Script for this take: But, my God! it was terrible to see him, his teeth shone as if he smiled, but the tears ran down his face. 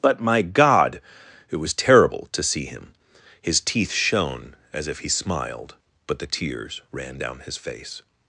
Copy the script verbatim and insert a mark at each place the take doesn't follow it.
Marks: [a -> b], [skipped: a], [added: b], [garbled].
But, my God! it was terrible to see him, his teeth shone as if he smiled, but the tears ran down his face.